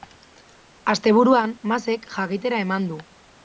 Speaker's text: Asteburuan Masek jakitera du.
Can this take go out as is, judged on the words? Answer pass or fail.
fail